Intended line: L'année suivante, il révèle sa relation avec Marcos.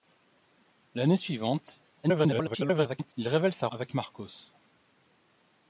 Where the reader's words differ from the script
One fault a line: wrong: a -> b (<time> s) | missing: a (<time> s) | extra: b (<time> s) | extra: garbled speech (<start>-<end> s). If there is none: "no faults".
extra: garbled speech (2.0-3.1 s)
missing: relation (3.7 s)